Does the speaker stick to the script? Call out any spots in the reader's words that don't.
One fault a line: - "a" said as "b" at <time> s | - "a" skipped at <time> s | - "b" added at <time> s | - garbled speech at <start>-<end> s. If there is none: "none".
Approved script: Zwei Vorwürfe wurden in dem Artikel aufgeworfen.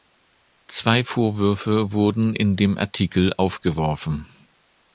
none